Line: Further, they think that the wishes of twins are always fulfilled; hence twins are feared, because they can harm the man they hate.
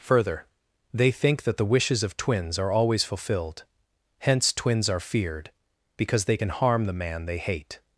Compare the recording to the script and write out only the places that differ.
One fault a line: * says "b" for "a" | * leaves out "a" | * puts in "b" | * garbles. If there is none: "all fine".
all fine